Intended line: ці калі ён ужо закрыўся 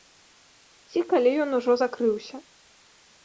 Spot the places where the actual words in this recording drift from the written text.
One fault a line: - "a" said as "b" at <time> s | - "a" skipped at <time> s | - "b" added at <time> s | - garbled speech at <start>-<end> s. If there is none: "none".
none